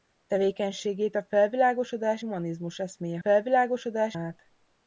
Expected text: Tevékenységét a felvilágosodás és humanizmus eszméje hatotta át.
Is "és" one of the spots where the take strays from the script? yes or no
yes